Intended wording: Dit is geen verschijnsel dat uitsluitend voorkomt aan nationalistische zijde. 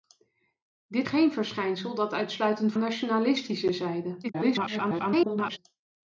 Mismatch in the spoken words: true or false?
true